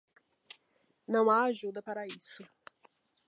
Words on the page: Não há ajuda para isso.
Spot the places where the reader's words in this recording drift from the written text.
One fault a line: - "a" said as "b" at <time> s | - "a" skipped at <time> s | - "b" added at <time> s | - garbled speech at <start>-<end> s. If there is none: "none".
none